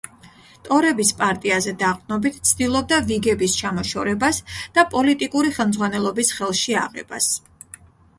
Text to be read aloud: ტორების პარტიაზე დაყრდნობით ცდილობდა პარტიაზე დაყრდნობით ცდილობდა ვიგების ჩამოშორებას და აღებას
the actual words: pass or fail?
fail